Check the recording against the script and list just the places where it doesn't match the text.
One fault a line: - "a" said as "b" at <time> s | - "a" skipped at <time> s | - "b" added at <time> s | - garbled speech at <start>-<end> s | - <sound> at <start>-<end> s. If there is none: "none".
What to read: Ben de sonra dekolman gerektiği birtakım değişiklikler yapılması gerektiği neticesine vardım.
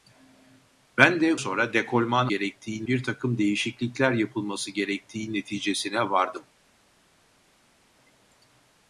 none